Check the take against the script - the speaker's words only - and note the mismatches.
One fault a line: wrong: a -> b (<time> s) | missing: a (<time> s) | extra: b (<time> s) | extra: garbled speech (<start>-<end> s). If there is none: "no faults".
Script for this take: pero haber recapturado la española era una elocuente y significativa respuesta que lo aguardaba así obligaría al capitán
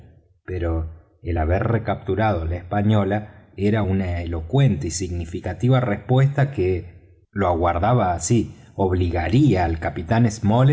extra: el (1.2 s)